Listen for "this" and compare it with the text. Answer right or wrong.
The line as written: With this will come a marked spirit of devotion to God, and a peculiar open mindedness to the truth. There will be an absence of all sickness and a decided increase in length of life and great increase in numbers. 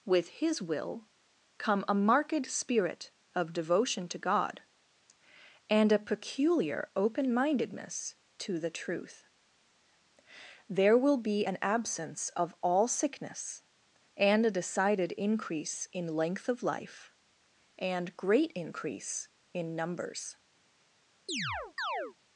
wrong